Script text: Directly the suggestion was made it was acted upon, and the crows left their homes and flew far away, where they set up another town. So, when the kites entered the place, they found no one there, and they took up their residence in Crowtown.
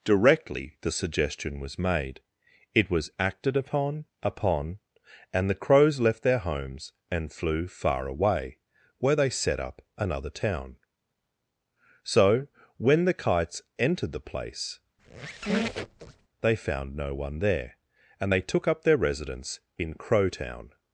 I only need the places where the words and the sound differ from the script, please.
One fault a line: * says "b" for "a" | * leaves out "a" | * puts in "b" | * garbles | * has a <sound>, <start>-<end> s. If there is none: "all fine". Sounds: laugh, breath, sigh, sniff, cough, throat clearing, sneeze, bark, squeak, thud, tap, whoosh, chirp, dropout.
* puts in "upon"
* has a squeak, 15.0-16.3 s